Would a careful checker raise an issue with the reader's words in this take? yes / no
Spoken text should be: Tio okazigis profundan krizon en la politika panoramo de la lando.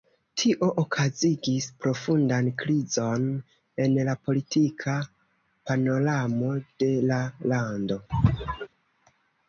no